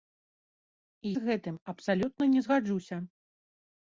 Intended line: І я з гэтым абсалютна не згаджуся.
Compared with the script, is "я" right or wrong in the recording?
wrong